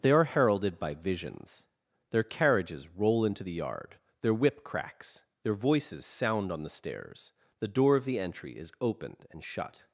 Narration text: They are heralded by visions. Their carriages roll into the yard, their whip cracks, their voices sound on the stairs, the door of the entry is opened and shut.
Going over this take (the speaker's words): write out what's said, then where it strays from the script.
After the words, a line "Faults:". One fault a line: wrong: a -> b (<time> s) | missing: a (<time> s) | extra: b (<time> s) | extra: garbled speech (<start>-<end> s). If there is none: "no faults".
They are heralded by visions. Their carriages roll into the yard, their whip cracks, their voices sound on the stairs, the door of the entry is opened and shut.
Faults:
no faults